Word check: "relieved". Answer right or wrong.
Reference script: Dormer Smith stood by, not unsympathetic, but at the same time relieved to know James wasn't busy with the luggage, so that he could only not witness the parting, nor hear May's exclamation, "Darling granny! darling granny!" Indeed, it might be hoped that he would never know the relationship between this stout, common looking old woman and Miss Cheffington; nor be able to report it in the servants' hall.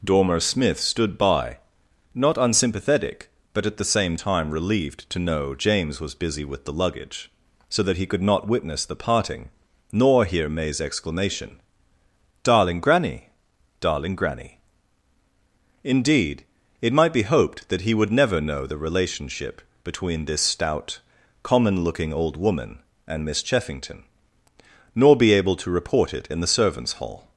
right